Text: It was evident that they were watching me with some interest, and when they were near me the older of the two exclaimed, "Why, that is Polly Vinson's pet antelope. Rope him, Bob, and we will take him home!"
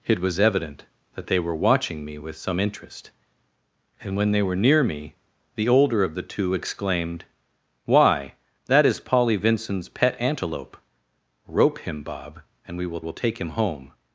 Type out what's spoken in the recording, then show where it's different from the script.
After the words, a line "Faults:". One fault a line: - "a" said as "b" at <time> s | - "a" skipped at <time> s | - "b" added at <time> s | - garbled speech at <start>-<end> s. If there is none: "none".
It was evident that they were watching me with some interest, and when they were near me the older of the two exclaimed, "Why, that is Polly Vinson's pet antelope. Rope him, Bob, and we will will take him home!"
Faults:
- "will" added at 13.0 s